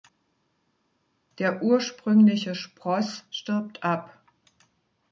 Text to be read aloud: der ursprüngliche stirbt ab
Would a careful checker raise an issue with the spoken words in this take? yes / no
yes